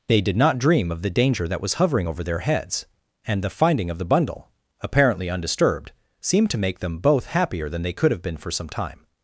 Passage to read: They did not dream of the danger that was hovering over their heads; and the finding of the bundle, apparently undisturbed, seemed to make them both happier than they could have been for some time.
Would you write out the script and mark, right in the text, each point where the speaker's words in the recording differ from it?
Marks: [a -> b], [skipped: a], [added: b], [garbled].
They did not dream of the danger that was hovering over their heads; and the finding of the bundle, apparently undisturbed, seemed to make them both happier than they could have been for some time.